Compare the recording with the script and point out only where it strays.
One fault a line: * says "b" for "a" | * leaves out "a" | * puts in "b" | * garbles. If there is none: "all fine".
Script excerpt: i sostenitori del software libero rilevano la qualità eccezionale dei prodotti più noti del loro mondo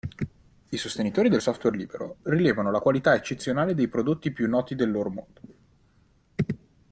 all fine